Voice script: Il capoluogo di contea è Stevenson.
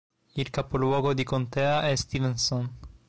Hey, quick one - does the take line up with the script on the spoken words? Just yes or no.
yes